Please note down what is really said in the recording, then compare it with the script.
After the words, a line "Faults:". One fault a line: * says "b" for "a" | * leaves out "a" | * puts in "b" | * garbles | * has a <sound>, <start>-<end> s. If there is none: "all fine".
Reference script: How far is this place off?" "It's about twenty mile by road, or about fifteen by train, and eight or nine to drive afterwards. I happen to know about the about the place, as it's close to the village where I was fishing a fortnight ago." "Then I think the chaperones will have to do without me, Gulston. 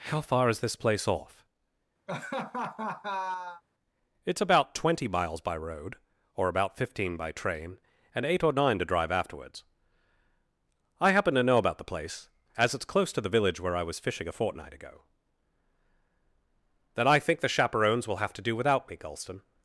How far is this place off?" "It's about twenty miles by road, or about fifteen by train, and eight or nine to drive afterwards. I happen to know about the place, as it's close to the village where I was fishing a fortnight ago." "Then I think the chaperones will have to do without me, Gulston.
Faults:
* has a laugh, 2.1-3.6 s
* says "miles" for "mile"
* leaves out "about the"